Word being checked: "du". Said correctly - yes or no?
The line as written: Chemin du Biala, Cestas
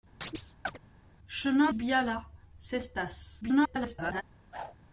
no